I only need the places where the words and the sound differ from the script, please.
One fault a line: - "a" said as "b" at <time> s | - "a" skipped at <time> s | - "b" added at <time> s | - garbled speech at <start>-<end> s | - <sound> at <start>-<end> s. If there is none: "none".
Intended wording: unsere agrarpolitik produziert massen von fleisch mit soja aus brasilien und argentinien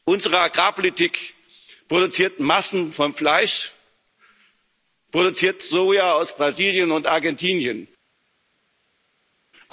- "mit" said as "produziert" at 5.1 s